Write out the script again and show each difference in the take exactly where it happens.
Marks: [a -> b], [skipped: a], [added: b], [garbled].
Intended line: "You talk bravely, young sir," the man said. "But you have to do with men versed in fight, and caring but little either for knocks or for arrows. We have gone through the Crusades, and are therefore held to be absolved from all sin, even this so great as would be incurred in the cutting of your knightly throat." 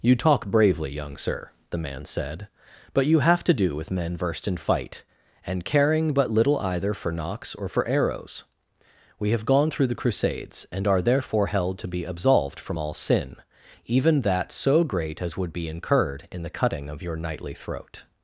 "You talk bravely, young sir," the man said. "But you have to do with men versed in fight, and caring but little either for knocks or for arrows. We have gone through the Crusades, and are therefore held to be absolved from all sin, even [this -> that] so great as would be incurred in the cutting of your knightly throat."